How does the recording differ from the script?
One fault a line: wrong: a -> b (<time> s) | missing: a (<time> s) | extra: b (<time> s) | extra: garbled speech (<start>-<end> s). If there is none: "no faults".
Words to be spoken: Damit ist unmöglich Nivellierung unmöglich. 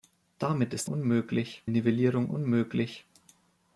no faults